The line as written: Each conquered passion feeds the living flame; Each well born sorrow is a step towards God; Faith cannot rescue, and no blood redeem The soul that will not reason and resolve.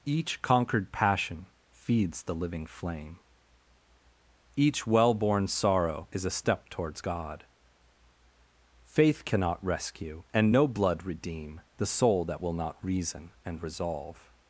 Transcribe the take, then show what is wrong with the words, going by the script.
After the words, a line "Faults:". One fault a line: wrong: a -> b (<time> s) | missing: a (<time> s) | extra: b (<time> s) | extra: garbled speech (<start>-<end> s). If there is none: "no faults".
Each conquered passion feeds the living flame; Each well born sorrow is a step towards God; Faith cannot rescue, and no blood redeem The soul that will not reason and resolve.
Faults:
no faults